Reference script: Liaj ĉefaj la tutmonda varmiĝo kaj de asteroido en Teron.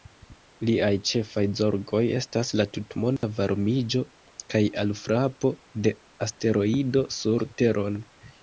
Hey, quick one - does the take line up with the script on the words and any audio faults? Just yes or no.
no